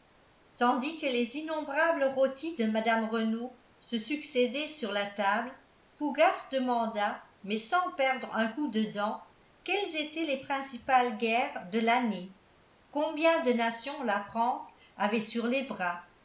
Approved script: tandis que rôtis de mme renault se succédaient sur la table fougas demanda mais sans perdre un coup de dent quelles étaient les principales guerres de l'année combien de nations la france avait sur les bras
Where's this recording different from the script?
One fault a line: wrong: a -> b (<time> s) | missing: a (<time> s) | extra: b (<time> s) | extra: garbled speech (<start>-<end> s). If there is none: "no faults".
extra: les innombrables (1.1 s)